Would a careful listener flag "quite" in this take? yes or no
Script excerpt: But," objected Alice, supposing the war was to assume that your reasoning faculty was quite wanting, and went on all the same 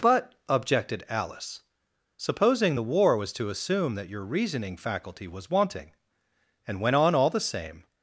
yes